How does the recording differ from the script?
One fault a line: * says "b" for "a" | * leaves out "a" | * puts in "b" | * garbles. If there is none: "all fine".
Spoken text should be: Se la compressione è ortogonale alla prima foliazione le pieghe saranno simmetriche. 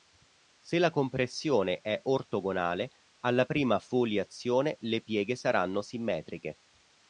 all fine